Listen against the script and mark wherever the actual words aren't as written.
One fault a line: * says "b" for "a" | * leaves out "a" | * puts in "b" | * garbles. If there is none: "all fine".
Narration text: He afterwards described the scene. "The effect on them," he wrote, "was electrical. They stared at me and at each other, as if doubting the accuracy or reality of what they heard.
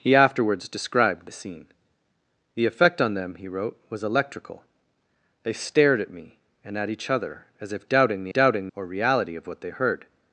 * says "doubting" for "accuracy"